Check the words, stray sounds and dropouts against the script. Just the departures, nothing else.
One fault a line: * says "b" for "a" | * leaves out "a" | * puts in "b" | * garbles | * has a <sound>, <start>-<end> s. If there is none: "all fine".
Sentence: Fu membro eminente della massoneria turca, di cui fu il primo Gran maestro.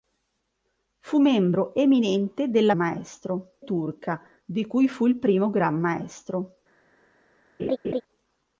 * says "maestro" for "massoneria"
* has a laugh, 7.6-8.0 s